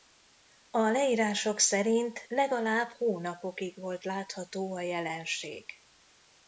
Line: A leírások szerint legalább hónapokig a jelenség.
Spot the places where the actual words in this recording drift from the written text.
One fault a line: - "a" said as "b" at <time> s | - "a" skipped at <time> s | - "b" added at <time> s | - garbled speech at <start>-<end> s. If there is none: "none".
- "volt látható" added at 3.8 s